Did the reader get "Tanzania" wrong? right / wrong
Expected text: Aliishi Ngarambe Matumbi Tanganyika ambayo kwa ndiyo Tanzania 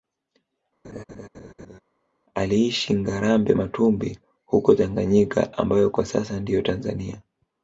right